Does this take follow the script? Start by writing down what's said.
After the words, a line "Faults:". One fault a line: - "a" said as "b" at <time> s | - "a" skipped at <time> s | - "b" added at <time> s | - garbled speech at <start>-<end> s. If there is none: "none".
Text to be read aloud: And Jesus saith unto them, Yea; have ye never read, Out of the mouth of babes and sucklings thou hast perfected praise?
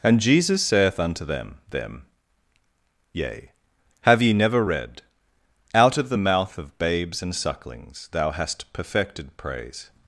And Jesus saith unto them them, Yea; have ye never read, Out of the mouth of babes and sucklings thou hast perfected praise?
Faults:
- "them" added at 1.7 s